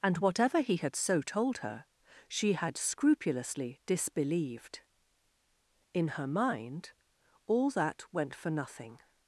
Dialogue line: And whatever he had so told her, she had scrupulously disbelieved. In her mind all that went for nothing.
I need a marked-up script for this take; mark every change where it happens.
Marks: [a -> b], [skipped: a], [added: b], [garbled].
And whatever he had so told her, she had scrupulously disbelieved. In her mind all that went for nothing.